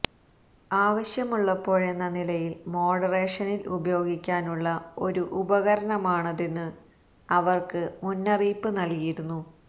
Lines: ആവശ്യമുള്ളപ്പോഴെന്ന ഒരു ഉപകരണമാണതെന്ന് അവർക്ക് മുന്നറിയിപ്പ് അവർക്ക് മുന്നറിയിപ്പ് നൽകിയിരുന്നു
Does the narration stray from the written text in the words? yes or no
yes